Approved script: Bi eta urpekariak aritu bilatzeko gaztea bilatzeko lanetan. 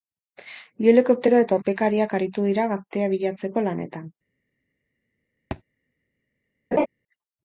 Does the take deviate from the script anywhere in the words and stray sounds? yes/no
yes